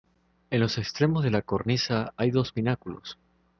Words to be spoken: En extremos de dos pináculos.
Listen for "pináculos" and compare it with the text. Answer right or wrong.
right